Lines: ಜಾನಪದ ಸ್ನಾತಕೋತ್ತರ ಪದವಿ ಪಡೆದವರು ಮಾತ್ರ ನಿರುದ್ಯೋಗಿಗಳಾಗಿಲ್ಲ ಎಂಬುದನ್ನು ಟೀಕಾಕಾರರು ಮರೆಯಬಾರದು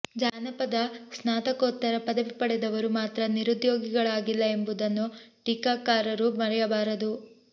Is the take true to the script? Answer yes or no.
yes